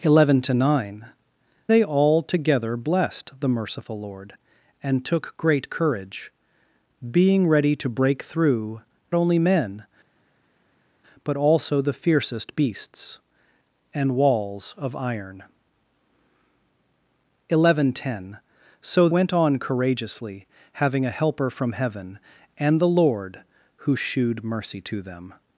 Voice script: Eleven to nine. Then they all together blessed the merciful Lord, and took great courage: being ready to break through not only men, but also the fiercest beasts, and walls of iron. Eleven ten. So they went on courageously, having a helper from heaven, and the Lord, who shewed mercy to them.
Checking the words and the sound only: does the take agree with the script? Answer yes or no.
no